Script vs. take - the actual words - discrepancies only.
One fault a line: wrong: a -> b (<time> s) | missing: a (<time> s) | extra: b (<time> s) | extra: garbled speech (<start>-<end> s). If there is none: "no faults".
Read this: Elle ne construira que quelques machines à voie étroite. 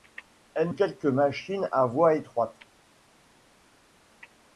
missing: ne construira que (0.7 s)